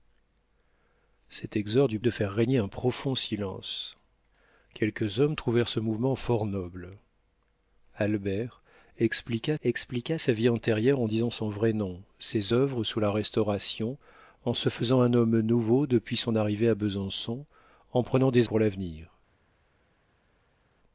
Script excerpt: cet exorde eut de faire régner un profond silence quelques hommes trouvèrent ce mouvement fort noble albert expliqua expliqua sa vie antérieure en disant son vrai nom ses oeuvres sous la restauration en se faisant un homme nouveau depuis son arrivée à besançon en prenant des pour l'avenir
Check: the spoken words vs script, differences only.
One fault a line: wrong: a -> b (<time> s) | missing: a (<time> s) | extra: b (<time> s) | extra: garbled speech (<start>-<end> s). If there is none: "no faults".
no faults